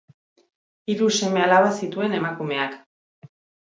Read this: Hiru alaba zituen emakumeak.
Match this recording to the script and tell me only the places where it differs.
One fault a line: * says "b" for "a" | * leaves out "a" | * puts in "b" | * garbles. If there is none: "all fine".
* puts in "seme"